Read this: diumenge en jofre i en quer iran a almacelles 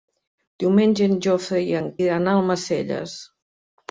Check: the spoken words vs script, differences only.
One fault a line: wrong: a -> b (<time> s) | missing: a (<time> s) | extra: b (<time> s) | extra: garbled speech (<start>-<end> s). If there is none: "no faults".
missing: quer (1.9 s)